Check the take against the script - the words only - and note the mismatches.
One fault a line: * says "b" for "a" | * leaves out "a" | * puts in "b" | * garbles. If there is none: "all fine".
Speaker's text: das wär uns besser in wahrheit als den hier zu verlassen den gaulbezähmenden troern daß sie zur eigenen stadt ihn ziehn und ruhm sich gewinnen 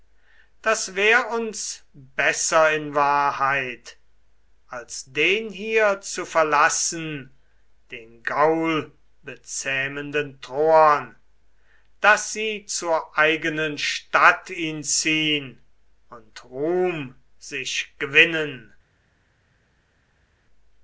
all fine